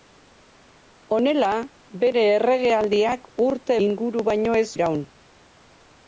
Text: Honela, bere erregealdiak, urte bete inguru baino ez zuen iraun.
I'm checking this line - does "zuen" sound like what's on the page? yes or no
no